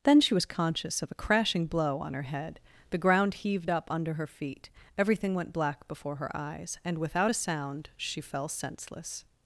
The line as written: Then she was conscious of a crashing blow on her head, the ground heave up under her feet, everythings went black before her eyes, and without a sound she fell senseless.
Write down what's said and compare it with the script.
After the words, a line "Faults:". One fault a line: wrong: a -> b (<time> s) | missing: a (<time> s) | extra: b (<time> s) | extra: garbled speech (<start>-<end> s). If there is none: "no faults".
Then she was conscious of a crashing blow on her head, the ground heaved up under her feet, everything went black before her eyes, and without a sound she fell senseless.
Faults:
wrong: heave -> heaved (3.4 s)
wrong: everythings -> everything (5.0 s)